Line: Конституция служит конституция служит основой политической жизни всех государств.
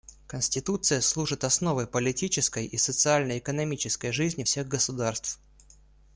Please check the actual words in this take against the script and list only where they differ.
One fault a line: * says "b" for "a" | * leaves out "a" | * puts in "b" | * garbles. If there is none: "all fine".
* says "основой политической и социально экономической" for "конституция служит основой политической"